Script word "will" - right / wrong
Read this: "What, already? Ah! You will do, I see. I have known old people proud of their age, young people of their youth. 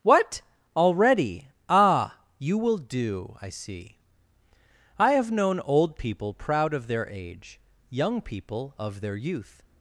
right